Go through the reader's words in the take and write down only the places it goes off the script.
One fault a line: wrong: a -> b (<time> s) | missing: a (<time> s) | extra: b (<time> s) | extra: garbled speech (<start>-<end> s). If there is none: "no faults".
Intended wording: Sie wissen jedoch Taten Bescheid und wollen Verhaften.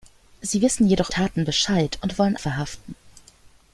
no faults